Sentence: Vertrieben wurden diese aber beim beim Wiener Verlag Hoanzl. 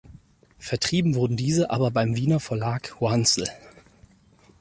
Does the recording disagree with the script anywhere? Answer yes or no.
yes